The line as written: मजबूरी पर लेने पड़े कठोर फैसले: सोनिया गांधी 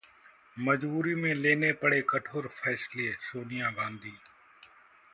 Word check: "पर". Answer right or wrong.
wrong